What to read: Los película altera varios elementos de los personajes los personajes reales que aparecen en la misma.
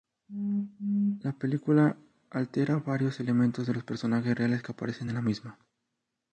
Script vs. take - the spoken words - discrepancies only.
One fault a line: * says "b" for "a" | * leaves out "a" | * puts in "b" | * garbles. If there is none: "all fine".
* says "La" for "Los"
* leaves out "los personajes"